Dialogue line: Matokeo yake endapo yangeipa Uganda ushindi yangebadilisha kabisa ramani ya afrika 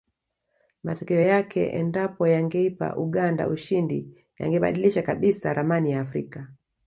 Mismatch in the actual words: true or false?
false